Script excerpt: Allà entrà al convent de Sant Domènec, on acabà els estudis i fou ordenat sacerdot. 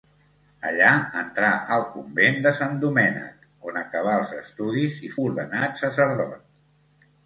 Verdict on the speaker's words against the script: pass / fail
fail